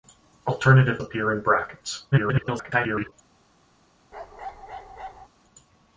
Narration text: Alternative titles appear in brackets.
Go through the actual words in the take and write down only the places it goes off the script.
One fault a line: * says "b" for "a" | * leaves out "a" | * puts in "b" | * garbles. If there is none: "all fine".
* leaves out "titles"
* garbles